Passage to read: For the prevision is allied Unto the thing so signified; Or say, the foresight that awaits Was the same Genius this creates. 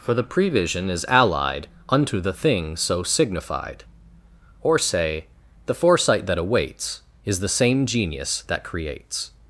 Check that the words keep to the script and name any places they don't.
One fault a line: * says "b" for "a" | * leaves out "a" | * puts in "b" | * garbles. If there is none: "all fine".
* says "Is" for "Was"
* says "that" for "this"